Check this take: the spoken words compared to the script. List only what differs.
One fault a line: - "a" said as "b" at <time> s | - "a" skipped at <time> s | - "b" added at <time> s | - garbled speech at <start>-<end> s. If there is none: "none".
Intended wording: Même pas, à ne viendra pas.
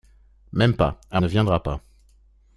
none